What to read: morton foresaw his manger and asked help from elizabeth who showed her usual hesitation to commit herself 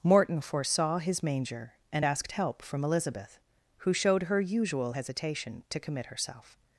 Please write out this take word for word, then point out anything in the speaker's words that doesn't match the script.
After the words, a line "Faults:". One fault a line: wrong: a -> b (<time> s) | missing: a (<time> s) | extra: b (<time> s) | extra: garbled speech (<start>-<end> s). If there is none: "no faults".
morton foresaw his manger and asked help from elizabeth who showed her usual hesitation to commit herself
Faults:
no faults